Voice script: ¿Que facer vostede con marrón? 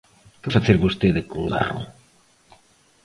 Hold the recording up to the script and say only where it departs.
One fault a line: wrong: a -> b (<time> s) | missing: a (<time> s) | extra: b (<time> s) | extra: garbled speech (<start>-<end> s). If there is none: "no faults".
no faults